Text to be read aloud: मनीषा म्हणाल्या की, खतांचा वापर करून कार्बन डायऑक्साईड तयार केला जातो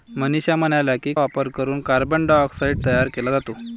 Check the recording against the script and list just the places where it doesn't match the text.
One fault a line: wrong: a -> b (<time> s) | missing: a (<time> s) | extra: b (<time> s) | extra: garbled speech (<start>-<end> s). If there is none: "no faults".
missing: खतांचा (1.1 s)